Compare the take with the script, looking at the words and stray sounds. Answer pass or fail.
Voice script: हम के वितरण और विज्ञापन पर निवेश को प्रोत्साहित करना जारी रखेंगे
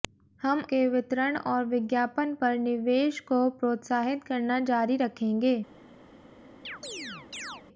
fail